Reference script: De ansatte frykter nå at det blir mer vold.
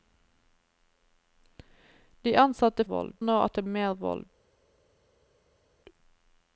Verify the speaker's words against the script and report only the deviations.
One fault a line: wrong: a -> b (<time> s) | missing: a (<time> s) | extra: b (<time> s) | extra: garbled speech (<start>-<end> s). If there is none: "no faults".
wrong: frykter -> vold (2.8 s)
missing: blir (3.6 s)